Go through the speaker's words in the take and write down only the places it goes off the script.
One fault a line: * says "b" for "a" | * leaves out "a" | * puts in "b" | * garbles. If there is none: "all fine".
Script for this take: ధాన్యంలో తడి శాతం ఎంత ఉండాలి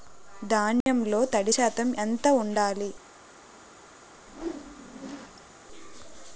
all fine